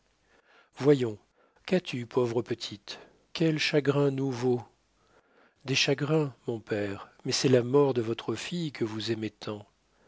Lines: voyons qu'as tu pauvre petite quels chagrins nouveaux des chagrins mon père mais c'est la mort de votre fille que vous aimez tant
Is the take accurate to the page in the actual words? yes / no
yes